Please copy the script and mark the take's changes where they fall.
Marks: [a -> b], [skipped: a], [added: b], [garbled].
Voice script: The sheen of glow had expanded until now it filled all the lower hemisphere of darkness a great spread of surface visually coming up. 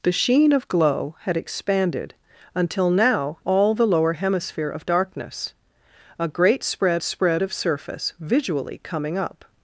The sheen of glow had expanded until now [skipped: it filled] all the lower hemisphere of darkness a great spread [added: spread] of surface visually coming up.